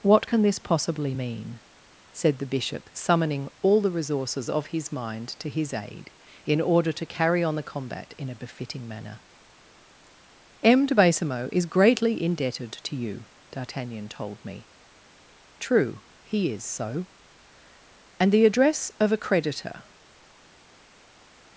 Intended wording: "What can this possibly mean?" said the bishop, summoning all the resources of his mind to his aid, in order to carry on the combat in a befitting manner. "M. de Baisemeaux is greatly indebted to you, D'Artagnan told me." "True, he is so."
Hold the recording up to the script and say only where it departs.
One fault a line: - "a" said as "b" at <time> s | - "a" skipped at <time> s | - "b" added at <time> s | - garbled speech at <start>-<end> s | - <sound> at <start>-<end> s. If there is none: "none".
- "And the address of a creditor" added at 18.2 s